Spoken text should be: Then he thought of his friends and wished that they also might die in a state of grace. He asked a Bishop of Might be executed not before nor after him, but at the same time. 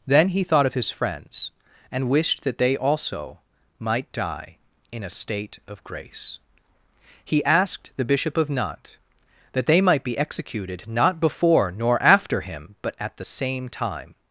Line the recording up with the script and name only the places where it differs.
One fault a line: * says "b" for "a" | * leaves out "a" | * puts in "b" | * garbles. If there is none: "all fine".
* says "the" for "a"
* puts in "Nantes that they"